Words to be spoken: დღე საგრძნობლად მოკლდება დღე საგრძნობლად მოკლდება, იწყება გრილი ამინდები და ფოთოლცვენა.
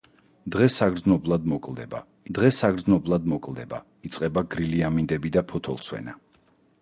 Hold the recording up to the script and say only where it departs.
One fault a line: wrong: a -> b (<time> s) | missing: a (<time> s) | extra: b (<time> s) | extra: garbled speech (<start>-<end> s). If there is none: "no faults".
no faults